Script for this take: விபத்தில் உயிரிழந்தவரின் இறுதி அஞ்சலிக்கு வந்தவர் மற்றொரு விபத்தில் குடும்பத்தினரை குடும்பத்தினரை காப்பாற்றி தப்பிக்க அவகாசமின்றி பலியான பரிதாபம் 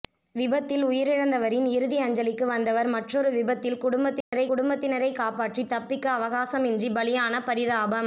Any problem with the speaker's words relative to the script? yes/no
no